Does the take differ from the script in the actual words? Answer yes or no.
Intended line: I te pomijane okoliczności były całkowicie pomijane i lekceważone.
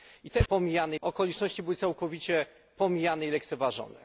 no